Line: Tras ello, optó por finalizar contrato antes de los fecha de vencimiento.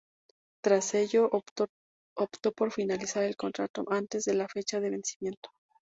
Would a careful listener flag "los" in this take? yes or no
yes